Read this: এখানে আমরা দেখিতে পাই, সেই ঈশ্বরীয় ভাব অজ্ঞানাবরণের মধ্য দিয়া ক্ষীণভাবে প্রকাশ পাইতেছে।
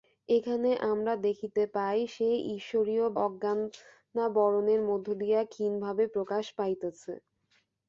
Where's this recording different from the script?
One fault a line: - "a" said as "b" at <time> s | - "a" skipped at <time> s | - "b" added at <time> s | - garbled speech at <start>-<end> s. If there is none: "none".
- "ভাব" skipped at 3.0 s